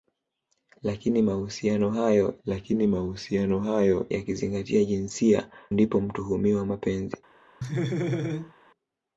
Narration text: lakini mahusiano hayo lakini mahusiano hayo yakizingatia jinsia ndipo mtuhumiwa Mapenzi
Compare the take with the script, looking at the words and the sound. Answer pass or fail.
fail